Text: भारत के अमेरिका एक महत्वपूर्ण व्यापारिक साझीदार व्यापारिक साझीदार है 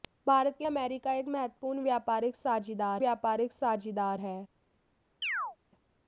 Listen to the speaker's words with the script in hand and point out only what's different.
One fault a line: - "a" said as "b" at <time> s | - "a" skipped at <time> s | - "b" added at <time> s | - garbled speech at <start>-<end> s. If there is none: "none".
none